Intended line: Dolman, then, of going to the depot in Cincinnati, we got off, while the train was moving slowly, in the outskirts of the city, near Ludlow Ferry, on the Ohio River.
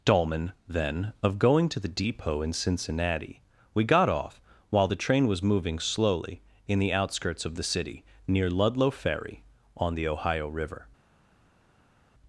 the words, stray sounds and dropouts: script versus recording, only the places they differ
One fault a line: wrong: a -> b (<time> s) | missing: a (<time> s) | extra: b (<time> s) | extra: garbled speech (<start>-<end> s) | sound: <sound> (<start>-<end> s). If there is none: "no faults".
no faults